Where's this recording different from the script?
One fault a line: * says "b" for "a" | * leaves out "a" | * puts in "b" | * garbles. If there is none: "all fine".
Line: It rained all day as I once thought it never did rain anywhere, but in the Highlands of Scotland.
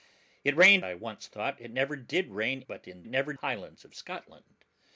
* leaves out "all day as"
* leaves out "anywhere"
* says "never" for "the"